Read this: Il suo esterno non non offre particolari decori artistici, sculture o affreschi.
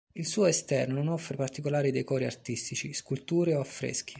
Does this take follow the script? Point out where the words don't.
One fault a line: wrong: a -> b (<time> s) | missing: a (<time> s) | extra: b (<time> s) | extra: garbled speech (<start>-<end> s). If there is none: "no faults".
missing: non (1.1 s)